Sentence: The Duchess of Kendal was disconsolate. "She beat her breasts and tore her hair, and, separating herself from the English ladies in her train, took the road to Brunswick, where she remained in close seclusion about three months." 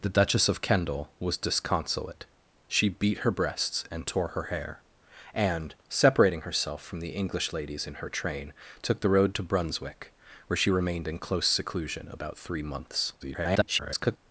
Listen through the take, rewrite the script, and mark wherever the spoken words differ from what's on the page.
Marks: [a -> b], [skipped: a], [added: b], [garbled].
The Duchess of Kendal was disconsolate. "She beat her breasts and tore her hair, and, separating herself from the English ladies in her train, took the road to Brunswick, where she remained in close seclusion about three months." [garbled]